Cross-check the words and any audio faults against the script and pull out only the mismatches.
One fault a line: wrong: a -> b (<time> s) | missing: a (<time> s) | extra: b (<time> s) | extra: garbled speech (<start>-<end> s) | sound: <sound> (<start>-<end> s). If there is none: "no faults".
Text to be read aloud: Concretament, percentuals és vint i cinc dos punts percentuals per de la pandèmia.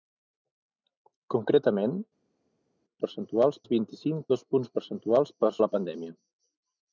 no faults